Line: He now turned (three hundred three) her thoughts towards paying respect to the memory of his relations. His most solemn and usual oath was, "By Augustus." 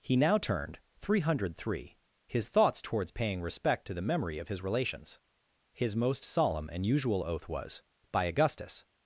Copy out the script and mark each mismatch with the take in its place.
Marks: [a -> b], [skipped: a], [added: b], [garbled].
He now turned (three hundred three) [her -> his] thoughts towards paying respect to the memory of his relations. His most solemn and usual oath was, "By Augustus."